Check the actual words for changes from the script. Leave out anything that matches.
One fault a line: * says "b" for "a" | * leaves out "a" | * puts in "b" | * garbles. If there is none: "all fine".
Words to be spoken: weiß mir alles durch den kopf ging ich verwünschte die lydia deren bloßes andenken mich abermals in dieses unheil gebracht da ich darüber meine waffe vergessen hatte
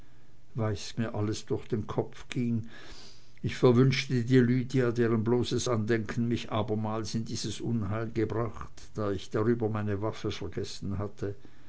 all fine